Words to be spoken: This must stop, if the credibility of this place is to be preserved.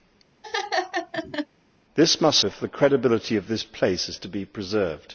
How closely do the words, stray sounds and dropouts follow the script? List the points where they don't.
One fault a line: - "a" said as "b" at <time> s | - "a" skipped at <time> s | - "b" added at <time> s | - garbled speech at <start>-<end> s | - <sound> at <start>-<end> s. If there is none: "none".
- laugh at 0.4-1.5 s
- "stop" skipped at 2.4 s